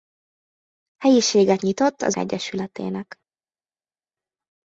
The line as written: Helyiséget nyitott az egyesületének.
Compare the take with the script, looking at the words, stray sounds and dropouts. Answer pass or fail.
pass